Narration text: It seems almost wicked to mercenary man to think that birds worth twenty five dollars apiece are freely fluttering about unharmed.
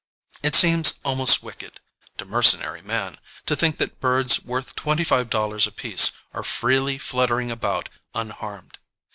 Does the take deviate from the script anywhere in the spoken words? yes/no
no